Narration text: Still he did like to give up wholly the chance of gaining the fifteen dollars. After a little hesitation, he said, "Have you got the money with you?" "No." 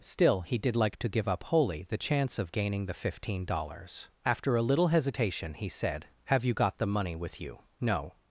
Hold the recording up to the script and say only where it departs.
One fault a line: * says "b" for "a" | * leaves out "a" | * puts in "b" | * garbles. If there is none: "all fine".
all fine